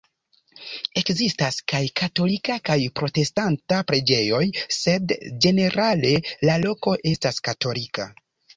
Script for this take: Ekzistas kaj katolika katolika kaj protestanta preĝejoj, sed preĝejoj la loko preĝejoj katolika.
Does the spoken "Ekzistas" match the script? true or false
true